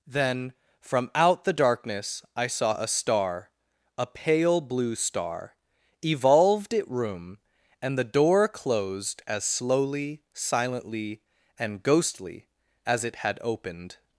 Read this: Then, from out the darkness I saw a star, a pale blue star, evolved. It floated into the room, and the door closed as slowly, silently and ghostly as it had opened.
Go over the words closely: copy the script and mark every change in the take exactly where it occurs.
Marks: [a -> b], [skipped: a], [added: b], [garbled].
Then, from out the darkness I saw a star, a pale blue star, evolved. It [skipped: floated into the] room, and the door closed as slowly, silently and ghostly as it had opened.